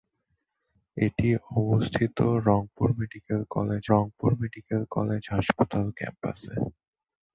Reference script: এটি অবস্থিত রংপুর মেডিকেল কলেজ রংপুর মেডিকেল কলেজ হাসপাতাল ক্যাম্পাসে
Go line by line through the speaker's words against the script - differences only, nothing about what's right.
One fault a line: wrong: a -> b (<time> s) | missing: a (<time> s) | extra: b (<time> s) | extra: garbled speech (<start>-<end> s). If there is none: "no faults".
no faults